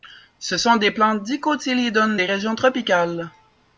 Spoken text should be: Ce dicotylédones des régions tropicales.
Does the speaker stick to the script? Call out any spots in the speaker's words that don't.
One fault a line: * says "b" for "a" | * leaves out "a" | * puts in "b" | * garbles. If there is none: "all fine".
* puts in "sont des plantes"